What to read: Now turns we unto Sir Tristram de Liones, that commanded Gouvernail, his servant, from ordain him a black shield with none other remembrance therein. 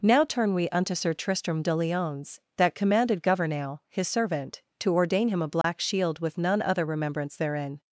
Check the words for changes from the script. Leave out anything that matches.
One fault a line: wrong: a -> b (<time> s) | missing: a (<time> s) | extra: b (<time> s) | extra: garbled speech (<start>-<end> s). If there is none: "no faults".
wrong: turns -> turn (0.2 s)
wrong: from -> to (4.8 s)